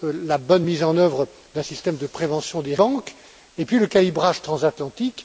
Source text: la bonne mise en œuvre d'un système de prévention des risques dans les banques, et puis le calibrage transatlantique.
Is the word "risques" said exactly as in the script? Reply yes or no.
no